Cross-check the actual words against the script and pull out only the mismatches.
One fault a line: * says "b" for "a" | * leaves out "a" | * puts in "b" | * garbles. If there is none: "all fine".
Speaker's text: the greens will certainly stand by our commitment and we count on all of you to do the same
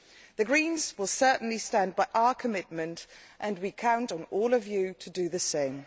all fine